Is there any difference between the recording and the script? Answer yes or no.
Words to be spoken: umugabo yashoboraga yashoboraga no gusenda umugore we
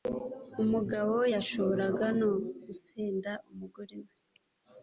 yes